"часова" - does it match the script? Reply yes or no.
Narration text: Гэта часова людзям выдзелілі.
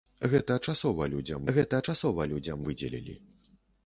yes